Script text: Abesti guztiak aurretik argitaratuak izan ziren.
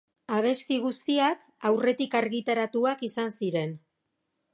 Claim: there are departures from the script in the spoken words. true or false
false